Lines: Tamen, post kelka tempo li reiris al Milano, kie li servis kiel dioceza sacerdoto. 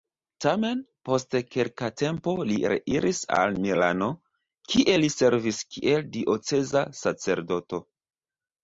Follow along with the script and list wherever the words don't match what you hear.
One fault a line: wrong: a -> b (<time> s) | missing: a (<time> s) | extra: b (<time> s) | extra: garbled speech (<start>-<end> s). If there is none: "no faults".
no faults